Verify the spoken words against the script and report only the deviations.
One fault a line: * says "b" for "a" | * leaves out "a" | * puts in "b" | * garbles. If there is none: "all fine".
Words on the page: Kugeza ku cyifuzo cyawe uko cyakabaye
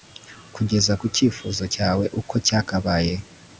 all fine